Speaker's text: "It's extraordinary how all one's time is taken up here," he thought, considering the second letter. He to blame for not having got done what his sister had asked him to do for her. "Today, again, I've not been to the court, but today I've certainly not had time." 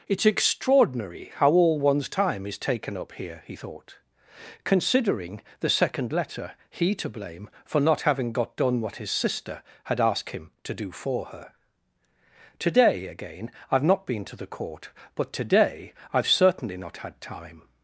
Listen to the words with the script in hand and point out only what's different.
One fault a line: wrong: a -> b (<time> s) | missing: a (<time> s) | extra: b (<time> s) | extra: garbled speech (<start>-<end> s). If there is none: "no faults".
no faults